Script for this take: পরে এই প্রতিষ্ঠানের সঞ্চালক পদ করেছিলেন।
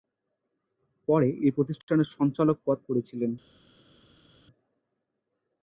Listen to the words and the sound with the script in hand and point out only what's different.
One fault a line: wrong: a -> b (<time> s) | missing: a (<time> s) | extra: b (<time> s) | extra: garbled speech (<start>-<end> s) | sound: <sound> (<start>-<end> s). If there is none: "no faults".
no faults